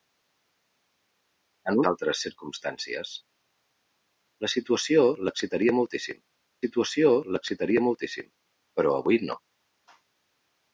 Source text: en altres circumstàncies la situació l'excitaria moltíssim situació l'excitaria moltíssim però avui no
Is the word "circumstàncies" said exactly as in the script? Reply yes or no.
yes